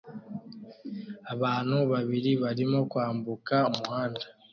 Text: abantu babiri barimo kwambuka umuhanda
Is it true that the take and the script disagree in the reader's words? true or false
false